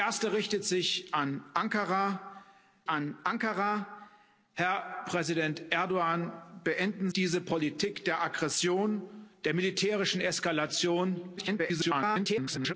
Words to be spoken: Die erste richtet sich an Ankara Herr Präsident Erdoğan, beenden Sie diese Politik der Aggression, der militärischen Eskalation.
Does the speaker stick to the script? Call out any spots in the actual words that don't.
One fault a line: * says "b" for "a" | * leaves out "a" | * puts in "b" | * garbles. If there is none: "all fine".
* puts in "an Ankara"
* leaves out "Sie"
* garbles